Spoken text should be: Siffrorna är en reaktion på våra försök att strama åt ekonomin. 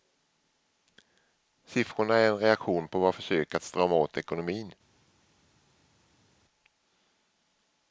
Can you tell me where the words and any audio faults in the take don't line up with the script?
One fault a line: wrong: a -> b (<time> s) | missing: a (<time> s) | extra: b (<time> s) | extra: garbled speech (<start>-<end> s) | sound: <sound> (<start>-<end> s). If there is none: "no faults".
no faults